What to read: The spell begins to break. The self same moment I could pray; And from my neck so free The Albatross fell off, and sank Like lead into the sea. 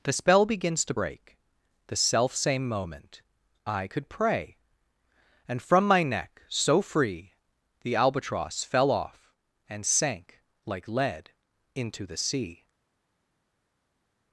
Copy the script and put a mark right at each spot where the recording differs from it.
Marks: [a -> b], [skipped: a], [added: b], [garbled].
The spell begins to break. The self same moment I could pray; And from my neck so free The Albatross fell off, and sank Like lead into the sea.